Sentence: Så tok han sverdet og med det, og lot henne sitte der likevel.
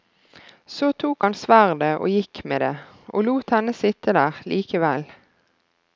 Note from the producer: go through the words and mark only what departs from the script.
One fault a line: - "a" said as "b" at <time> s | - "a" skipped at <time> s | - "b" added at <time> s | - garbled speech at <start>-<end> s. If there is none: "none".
- "gikk" added at 2.1 s